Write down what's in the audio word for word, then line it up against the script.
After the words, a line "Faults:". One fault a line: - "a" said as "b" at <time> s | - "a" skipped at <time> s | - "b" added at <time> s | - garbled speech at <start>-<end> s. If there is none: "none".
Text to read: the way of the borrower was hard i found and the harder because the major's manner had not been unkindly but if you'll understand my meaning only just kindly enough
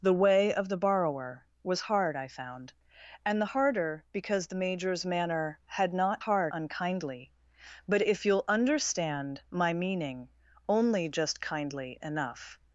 the way of the borrower was hard i found and the harder because the major's manner had not hard unkindly but if you'll understand my meaning only just kindly enough
Faults:
- "been" said as "hard" at 6.2 s